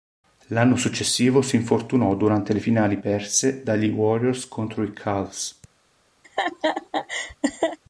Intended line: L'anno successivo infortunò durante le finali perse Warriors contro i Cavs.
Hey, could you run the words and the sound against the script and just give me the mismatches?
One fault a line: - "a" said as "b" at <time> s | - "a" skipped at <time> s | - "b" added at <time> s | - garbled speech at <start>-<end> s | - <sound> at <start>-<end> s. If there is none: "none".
- "si" added at 1.4 s
- "dagli" added at 3.6 s
- laugh at 6.2-7.8 s